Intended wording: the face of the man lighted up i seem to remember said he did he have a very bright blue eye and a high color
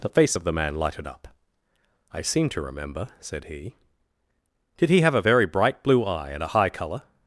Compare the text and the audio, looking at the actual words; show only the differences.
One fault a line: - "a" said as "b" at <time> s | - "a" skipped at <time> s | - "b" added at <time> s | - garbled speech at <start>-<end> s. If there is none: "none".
none